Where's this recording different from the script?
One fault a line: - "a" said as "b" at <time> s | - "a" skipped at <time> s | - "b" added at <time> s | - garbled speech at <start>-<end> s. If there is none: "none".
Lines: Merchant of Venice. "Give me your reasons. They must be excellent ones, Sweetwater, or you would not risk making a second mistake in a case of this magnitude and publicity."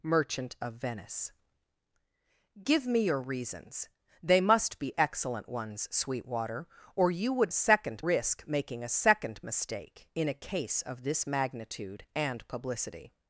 - "not" said as "second" at 7.5 s